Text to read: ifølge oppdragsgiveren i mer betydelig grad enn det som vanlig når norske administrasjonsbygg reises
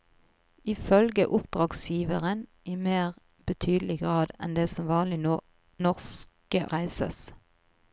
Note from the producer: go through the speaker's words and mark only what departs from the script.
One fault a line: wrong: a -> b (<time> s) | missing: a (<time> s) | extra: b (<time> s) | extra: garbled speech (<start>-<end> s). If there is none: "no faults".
missing: administrasjonsbygg (6.6 s)